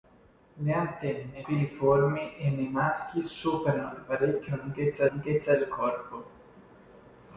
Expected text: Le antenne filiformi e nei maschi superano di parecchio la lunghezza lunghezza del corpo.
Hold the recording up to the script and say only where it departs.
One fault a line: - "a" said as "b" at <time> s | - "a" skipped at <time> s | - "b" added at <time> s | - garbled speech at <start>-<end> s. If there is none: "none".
none